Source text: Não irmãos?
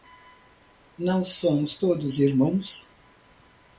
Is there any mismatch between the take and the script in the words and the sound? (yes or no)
yes